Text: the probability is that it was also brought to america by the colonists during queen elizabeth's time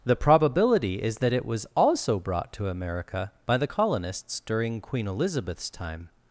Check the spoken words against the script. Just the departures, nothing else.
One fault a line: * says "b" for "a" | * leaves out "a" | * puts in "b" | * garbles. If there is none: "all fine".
all fine